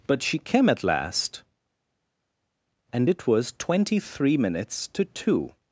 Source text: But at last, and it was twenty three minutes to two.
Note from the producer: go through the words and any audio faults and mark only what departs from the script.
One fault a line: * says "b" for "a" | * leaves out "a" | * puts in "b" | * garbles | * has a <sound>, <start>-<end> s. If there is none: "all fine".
* puts in "she came"